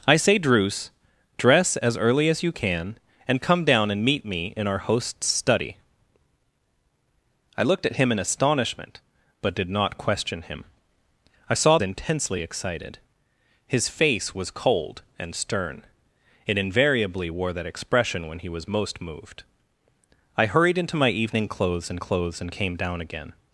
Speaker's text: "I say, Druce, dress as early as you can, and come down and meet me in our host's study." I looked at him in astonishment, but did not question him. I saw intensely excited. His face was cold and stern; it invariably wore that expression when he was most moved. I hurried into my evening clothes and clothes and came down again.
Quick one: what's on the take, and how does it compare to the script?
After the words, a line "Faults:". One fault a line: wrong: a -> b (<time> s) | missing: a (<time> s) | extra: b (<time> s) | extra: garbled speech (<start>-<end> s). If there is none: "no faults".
"I say, Druce, dress as early as you can, and come down and meet me in our host's study." I looked at him in astonishment, but did not question him. I saw intensely excited. His face was cold and stern; it invariably wore that expression when he was most moved. I hurried into my evening clothes and clothes and came down again.
Faults:
no faults